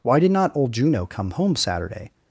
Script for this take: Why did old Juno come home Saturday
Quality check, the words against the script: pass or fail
fail